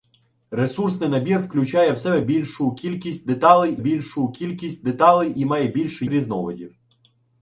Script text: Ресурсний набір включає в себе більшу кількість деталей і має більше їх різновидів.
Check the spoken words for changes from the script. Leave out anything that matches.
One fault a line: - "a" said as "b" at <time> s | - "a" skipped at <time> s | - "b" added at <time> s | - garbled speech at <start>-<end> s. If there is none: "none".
- "більшу кількість деталей" added at 3.8 s
- "їх" skipped at 6.0 s